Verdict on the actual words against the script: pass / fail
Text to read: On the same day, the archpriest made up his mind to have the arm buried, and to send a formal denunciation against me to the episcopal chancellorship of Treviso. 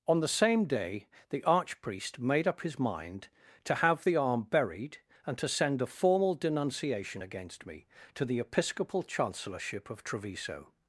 pass